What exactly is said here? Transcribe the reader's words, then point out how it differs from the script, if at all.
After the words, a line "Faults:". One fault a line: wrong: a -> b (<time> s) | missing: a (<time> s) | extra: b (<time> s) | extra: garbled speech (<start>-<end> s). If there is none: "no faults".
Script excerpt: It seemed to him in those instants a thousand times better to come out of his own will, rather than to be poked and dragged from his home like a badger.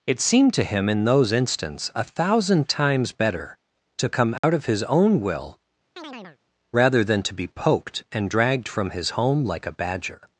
It seemed to him in those instants a thousand times better to come out of his own will, rather than to be poked and dragged from his home like a badger.
Faults:
no faults